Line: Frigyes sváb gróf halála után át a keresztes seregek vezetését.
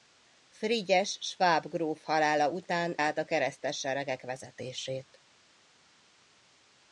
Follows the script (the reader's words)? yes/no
yes